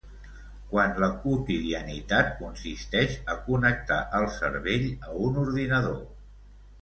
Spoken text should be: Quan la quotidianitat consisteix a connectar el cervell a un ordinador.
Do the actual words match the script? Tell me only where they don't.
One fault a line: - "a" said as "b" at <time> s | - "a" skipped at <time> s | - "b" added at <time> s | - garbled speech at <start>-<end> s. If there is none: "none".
none